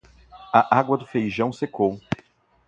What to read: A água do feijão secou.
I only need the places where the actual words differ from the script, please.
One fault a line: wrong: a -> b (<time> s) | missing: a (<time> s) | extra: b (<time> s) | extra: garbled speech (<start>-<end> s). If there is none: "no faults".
no faults